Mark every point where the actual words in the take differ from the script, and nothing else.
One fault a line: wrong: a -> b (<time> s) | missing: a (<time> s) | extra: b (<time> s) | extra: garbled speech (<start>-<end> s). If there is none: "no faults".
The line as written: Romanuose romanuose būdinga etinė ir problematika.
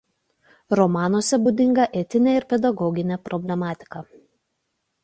missing: romanuose (1.4 s)
extra: pedagoginė (2.5 s)